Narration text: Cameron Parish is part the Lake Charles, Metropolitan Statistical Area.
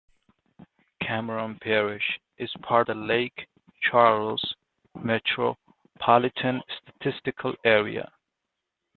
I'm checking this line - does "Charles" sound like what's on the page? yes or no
yes